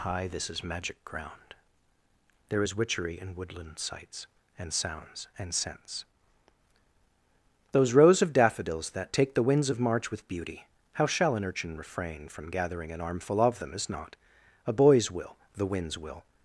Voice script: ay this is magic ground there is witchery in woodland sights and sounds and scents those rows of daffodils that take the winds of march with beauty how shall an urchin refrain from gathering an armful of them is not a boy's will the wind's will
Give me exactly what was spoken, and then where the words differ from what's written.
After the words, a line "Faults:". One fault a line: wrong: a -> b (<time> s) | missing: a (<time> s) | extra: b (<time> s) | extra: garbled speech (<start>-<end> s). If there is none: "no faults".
hi this is magic ground there is witchery in woodland sights and sounds and scents those rows of daffodils that take the winds of march with beauty how shall an urchin refrain from gathering an armful of them is not a boy's will the wind's will
Faults:
wrong: ay -> hi (0.0 s)